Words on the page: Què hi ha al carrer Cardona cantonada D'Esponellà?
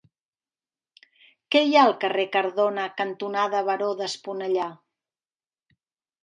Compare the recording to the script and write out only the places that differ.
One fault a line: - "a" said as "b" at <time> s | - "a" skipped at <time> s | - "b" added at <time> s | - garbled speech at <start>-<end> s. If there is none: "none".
- "Baró" added at 3.7 s